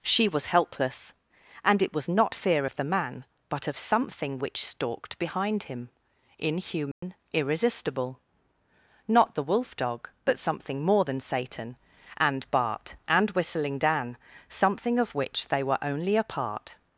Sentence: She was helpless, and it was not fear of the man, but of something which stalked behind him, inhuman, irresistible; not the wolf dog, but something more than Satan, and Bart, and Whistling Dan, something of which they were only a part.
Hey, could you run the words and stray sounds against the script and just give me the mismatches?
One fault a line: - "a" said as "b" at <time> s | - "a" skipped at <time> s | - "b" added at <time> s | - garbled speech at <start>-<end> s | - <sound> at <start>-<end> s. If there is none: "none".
- dropout at 6.9-7.0 s